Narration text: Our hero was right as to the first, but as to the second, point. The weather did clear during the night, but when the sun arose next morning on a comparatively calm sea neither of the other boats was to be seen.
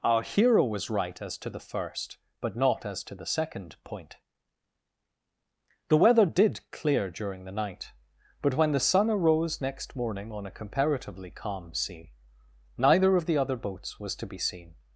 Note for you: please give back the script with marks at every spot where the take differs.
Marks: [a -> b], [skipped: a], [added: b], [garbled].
Our hero was right as to the first, but [added: not] as to the second, point. The weather did clear during the night, but when the sun arose next morning on a comparatively calm sea neither of the other boats was to be seen.